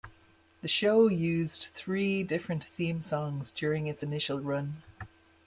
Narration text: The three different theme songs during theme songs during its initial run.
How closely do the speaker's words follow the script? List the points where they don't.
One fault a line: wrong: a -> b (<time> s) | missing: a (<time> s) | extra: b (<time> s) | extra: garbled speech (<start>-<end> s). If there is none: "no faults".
extra: show used (0.7 s)
missing: theme songs during (3.9 s)